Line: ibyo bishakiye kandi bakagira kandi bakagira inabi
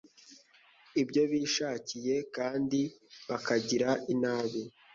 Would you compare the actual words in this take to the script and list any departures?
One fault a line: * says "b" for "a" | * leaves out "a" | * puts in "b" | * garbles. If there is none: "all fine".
* leaves out "kandi bakagira"